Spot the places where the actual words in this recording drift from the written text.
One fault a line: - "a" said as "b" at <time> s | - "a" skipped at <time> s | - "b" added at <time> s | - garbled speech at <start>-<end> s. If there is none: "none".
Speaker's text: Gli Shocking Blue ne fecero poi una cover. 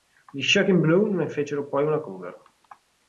none